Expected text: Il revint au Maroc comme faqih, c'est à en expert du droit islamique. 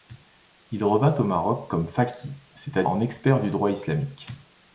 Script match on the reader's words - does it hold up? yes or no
yes